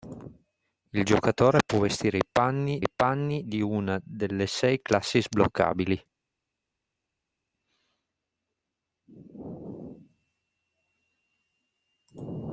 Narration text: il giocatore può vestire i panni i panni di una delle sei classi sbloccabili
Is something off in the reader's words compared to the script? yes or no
no